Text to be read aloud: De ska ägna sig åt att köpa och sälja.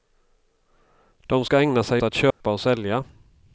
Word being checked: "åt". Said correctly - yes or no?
no